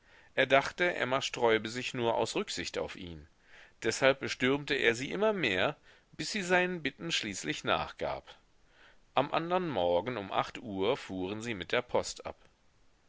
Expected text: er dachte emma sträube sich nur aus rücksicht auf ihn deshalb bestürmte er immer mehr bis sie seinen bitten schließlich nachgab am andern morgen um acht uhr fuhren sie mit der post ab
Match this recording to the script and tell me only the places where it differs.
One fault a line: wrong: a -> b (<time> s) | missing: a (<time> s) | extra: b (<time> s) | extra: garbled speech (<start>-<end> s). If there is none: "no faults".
extra: sie (5.0 s)